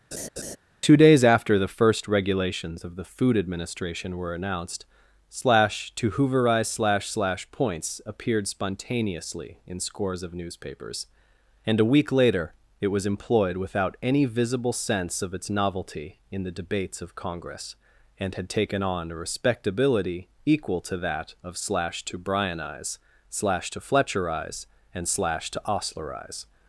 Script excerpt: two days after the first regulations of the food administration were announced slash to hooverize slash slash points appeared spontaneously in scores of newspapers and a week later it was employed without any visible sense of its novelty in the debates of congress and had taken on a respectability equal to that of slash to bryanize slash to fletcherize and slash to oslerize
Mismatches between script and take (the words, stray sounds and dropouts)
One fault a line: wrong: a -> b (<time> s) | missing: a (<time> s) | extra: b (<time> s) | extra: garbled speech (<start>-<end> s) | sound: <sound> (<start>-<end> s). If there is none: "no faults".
sound: laugh (0.1-0.6 s)